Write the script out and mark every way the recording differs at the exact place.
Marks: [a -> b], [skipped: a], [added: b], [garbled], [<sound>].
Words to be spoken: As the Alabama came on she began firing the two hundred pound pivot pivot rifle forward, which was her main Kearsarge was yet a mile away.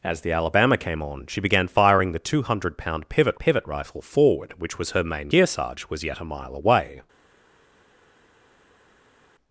As the Alabama came on she began firing the two hundred pound pivot pivot rifle forward, which was her main Kearsarge was yet a mile away.